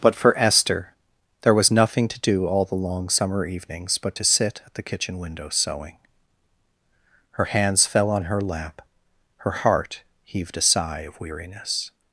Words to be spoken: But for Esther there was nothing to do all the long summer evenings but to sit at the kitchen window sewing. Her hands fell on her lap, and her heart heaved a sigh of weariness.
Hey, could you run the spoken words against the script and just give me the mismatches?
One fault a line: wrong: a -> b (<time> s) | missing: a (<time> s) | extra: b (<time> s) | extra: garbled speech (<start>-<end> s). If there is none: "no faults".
missing: and (8.8 s)